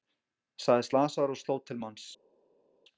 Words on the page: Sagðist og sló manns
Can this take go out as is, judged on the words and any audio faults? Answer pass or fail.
fail